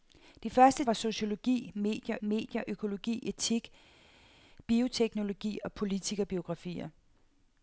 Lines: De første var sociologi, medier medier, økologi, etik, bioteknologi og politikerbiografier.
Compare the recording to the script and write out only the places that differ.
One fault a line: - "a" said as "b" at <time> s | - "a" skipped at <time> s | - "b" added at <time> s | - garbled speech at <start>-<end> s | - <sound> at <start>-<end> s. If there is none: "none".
none